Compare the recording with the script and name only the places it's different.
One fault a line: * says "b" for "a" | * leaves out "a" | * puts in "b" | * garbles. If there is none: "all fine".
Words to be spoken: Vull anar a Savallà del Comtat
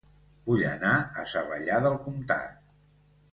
all fine